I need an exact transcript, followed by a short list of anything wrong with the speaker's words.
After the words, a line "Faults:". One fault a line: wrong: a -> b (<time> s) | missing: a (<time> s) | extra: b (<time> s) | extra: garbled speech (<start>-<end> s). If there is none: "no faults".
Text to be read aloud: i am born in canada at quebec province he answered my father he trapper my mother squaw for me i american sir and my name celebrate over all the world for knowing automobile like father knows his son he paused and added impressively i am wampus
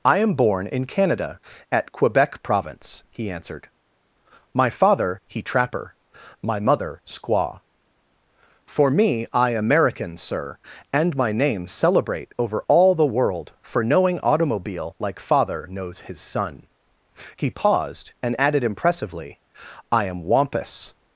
i am born in canada at quebec province he answered my father he trapper my mother squaw for me i american sir and my name celebrate over all the world for knowing automobile like father knows his son he paused and added impressively i am wampus
Faults:
no faults